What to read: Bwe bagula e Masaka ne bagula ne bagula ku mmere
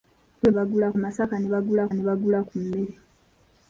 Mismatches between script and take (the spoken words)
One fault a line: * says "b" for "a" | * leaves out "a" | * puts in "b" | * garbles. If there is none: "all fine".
all fine